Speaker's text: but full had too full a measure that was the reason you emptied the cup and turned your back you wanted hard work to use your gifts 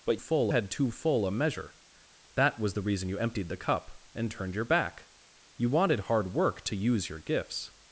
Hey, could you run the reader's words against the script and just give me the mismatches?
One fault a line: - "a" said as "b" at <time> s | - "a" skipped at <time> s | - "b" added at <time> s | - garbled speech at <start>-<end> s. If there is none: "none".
none